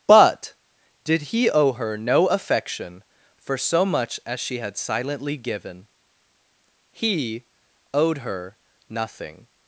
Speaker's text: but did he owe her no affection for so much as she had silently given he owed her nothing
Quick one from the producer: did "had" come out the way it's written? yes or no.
yes